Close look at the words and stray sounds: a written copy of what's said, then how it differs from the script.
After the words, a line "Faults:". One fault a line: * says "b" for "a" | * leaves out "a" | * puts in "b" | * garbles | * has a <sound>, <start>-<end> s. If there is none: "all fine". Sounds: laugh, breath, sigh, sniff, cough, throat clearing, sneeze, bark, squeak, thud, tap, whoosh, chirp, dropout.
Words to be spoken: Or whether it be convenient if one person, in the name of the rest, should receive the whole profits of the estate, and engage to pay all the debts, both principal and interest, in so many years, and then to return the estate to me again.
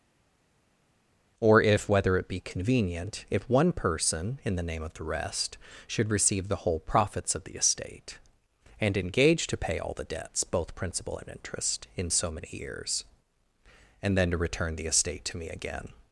Or if whether it be convenient if one person, in the name of the rest, should receive the whole profits of the estate, and engage to pay all the debts, both principal and interest, in so many years, and then to return the estate to me again.
Faults:
* puts in "if"